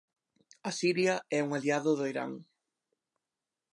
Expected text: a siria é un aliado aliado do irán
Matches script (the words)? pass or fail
fail